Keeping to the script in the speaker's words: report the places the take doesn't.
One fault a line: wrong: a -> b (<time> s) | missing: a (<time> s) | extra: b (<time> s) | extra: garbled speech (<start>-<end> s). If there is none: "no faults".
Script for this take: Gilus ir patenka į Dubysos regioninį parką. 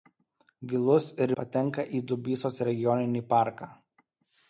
no faults